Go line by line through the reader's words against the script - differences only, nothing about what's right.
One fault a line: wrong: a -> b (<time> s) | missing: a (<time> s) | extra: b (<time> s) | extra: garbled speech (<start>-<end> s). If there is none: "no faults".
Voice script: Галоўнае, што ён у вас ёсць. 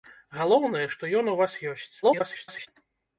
extra: garbled speech (2.0-2.7 s)